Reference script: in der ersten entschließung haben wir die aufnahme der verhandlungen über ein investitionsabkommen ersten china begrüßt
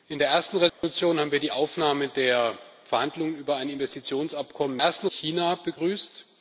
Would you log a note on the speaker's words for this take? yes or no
no